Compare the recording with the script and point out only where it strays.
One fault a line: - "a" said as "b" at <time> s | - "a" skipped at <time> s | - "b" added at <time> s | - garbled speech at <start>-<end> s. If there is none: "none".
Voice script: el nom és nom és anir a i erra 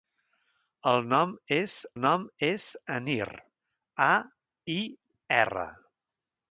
none